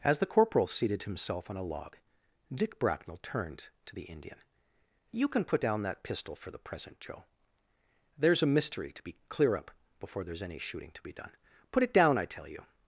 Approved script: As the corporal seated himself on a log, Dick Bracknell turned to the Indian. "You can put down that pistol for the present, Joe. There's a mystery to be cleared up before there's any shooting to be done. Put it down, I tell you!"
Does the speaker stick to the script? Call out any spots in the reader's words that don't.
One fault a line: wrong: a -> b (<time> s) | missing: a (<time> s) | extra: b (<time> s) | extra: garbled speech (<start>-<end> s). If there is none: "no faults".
wrong: cleared -> clear (9.3 s)